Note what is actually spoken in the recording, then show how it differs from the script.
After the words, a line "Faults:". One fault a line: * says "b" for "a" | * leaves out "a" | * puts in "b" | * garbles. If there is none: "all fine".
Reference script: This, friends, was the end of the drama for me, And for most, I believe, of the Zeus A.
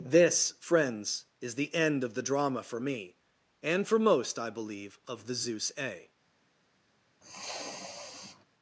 This, friends, is the end of the drama for me, And for most, I believe, of the Zeus A.
Faults:
* says "is" for "was"